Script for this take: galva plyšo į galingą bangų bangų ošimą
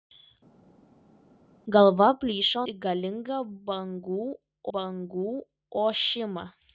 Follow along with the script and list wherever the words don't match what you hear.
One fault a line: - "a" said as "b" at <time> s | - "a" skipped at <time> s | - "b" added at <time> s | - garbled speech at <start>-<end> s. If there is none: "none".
none